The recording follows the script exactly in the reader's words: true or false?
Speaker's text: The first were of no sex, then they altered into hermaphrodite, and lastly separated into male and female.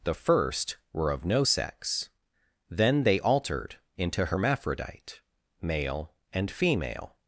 false